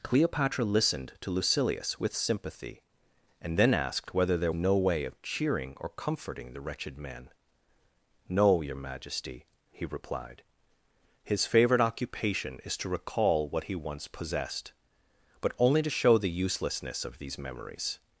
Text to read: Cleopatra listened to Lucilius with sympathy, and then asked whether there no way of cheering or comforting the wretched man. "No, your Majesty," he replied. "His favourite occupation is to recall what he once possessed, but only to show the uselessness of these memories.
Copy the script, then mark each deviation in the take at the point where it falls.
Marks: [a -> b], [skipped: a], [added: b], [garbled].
Cleopatra listened to Lucilius with sympathy, and then asked whether there no way of cheering or comforting the wretched man. "No, your Majesty," he replied. "His favourite occupation is to recall what he once possessed, but only to show the uselessness of these memories.